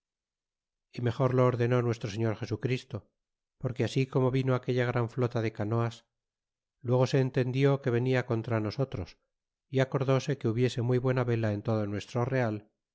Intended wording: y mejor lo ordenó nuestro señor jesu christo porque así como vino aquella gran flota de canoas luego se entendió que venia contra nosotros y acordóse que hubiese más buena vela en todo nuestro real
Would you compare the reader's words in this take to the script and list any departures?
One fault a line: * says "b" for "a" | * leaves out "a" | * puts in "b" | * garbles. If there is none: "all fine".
* says "muy" for "más"